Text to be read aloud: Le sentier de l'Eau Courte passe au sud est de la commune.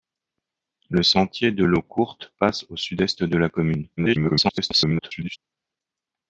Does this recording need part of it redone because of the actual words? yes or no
yes